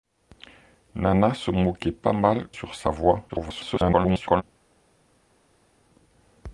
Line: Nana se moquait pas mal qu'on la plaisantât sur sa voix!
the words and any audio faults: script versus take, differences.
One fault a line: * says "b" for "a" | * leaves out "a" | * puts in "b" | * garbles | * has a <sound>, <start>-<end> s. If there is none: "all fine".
* leaves out "qu'on la plaisantât"
* garbles